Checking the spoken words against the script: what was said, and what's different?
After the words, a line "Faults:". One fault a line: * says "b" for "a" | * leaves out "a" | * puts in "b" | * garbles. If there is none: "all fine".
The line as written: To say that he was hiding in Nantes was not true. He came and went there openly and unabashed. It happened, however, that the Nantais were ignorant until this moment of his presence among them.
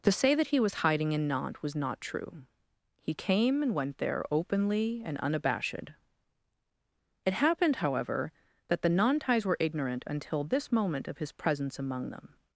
To say that he was hiding in Nantes was not true. He came and went there openly and unabashed. It happened, however, that the Nantais were ignorant until this moment of his presence among them.
Faults:
all fine